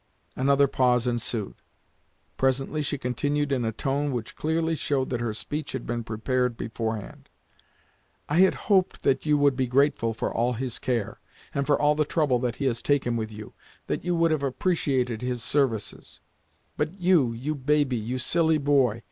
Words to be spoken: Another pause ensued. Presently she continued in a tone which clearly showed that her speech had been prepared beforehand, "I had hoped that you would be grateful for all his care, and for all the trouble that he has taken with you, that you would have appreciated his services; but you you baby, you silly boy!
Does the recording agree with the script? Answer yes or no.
yes